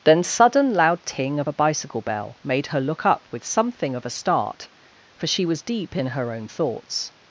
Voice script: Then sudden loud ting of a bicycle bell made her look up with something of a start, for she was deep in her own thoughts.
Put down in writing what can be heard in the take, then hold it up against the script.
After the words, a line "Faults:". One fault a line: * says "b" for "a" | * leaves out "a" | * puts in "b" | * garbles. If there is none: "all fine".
Then sudden loud ting of a bicycle bell made her look up with something of a start, for she was deep in her own thoughts.
Faults:
all fine